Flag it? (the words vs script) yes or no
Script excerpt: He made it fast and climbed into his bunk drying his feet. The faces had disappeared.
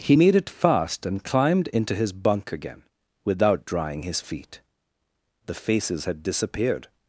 yes